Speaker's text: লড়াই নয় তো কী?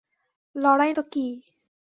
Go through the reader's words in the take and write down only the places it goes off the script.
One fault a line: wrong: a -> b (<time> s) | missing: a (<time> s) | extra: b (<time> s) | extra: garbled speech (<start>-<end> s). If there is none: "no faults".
missing: নয় (0.9 s)